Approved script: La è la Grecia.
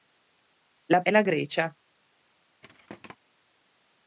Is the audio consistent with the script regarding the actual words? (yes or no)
yes